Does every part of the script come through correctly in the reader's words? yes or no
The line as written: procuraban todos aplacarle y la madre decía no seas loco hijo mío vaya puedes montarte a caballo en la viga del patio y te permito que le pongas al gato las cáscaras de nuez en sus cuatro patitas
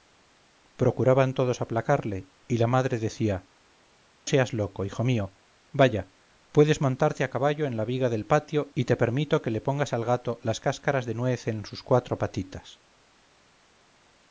no